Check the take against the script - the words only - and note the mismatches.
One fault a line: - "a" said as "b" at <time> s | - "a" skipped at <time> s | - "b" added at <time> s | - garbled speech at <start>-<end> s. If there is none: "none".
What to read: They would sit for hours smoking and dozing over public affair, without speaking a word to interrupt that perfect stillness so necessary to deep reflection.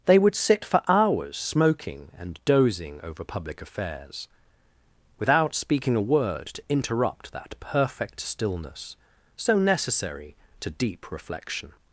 - "affair" said as "affairs" at 3.6 s